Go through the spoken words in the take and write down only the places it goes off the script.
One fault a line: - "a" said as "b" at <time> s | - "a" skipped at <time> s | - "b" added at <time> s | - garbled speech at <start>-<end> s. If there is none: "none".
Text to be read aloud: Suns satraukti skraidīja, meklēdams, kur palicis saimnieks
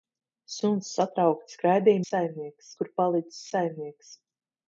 - "meklēdams" said as "saimnieks" at 2.1 s